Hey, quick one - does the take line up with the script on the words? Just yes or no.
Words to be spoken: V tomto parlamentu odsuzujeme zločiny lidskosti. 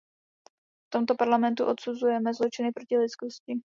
no